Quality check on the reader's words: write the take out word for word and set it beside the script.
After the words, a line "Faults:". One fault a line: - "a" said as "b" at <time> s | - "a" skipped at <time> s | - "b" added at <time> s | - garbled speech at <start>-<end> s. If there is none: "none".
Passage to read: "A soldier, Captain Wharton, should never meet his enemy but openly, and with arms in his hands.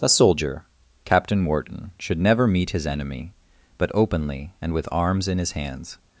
"A soldier, Captain Wharton, should never meet his enemy but openly, and with arms in his hands.
Faults:
none